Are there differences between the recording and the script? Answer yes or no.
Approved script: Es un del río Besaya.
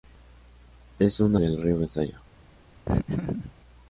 no